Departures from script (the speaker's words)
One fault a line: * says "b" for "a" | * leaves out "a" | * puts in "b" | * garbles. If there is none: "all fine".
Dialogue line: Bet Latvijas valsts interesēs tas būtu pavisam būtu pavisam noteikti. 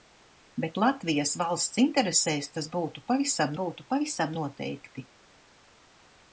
all fine